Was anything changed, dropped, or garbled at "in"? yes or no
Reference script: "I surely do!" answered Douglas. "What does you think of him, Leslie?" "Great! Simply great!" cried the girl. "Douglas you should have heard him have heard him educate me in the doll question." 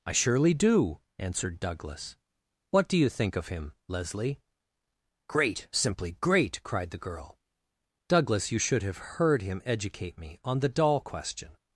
yes